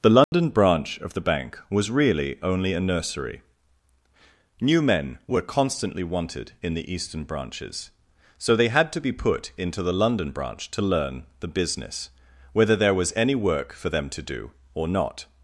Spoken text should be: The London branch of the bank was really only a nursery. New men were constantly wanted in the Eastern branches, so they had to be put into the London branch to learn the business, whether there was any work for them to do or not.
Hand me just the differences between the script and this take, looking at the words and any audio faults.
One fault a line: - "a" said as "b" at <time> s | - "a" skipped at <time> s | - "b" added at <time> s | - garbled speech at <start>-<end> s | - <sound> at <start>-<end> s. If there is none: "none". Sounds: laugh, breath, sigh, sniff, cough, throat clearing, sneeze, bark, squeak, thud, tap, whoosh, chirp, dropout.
- dropout at 0.2-0.3 s